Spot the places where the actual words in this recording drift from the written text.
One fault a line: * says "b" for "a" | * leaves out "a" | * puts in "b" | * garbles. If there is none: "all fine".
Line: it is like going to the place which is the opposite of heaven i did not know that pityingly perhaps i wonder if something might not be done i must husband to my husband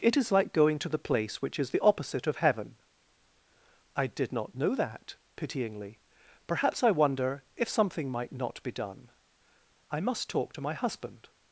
* says "talk" for "husband"